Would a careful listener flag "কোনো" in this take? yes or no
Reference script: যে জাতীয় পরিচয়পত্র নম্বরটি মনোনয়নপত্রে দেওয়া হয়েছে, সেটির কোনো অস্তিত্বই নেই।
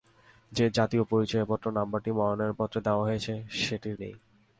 yes